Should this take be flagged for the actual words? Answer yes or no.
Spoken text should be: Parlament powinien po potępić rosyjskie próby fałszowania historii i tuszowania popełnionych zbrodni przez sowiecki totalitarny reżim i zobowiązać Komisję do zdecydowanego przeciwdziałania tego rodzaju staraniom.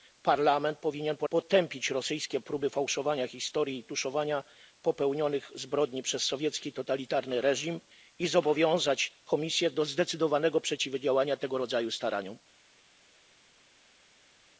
no